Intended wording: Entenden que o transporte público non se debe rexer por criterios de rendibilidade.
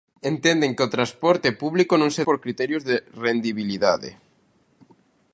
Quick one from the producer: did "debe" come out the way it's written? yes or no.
no